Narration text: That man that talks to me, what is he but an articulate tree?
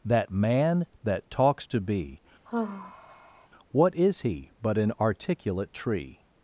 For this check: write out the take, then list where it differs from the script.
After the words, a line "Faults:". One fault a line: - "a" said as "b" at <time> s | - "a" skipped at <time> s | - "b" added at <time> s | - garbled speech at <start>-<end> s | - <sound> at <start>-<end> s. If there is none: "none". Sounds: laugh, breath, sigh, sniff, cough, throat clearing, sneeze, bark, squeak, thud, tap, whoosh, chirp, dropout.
That man that talks to be, what is he but an articulate tree?
Faults:
- "me" said as "be" at 1.8 s
- sigh at 2.5-3.5 s